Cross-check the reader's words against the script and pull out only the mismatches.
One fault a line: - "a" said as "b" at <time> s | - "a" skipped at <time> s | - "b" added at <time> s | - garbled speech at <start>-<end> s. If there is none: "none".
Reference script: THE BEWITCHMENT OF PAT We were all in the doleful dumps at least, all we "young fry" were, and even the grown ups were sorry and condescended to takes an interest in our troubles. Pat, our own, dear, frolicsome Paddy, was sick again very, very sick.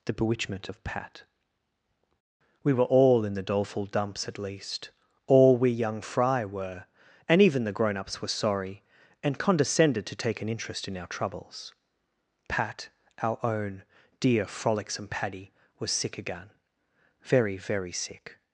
- "takes" said as "take" at 10.1 s